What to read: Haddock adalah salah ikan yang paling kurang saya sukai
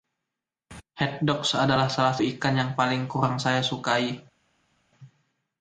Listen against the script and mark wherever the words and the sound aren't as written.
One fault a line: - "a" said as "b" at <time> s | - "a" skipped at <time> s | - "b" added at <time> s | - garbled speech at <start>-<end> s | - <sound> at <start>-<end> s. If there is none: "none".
none